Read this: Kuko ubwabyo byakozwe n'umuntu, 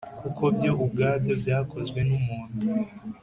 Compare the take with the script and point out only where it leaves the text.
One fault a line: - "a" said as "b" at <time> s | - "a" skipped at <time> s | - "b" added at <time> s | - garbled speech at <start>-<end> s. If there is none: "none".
- "byo" added at 0.5 s